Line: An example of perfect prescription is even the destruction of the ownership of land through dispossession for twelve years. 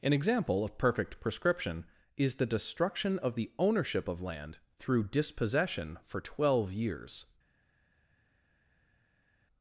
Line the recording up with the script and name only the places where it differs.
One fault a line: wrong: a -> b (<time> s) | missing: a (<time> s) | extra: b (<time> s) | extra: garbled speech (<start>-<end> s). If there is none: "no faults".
missing: even (2.4 s)